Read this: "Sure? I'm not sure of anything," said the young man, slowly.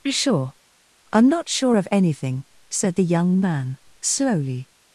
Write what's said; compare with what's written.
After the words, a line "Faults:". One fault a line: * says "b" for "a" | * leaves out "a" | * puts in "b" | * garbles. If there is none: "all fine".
"Sure? I'm not sure of anything," said the young man, slowly.
Faults:
all fine